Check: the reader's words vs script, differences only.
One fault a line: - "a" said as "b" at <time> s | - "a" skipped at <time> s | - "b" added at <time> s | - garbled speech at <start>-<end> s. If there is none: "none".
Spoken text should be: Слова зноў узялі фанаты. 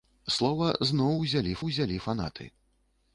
- "узялі" added at 1.7 s